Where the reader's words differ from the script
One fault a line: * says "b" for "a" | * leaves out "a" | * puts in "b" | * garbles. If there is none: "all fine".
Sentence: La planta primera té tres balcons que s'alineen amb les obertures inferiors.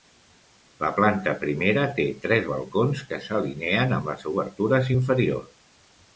all fine